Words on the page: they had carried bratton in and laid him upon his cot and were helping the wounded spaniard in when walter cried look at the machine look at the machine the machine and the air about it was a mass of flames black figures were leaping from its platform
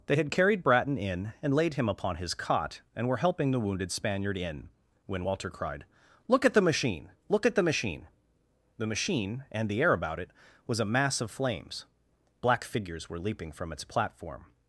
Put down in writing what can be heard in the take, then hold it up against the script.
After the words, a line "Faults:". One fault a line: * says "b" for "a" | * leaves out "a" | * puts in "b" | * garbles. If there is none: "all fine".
they had carried bratton in and laid him upon his cot and were helping the wounded spaniard in when walter cried look at the machine look at the machine the machine and the air about it was a mass of flames black figures were leaping from its platform
Faults:
all fine